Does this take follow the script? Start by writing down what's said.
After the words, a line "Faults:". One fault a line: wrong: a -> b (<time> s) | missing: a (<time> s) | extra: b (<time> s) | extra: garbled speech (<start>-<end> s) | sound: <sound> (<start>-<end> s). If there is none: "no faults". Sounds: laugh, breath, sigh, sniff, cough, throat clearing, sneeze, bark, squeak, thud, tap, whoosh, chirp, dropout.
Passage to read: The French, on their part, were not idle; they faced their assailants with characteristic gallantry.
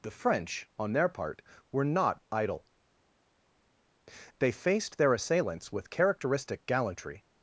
The French, on their part, were not idle; they faced their assailants with characteristic gallantry.
Faults:
no faults